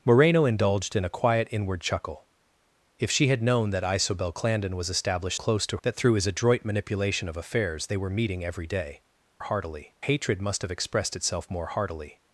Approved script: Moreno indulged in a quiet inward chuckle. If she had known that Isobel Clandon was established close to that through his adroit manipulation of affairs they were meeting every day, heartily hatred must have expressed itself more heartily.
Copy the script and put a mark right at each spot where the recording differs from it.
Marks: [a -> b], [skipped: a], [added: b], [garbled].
Moreno indulged in a quiet inward chuckle. If she had known that Isobel Clandon was established close to that through his adroit manipulation of affairs they were meeting every day, heartily hatred must have expressed itself more heartily.